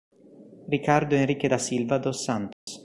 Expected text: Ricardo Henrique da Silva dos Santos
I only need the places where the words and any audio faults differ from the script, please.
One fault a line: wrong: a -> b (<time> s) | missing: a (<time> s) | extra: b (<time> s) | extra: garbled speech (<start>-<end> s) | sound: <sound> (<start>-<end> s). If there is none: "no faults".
sound: dropout (2.5-2.7 s)